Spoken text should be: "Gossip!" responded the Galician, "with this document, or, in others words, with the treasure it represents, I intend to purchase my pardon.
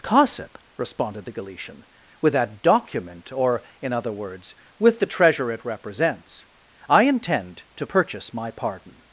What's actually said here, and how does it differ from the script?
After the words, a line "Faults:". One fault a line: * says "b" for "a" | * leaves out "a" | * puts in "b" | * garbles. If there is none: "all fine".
"Gossip!" responded the Galician, "with that document, or, in other words, with the treasure it represents, I intend to purchase my pardon.
Faults:
* says "that" for "this"
* says "other" for "others"